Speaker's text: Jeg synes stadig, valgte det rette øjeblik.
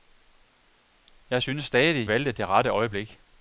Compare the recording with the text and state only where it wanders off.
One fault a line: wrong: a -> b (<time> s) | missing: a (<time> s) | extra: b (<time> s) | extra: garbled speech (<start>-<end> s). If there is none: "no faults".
no faults